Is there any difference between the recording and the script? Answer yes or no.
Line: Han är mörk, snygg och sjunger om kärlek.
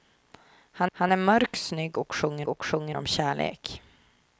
yes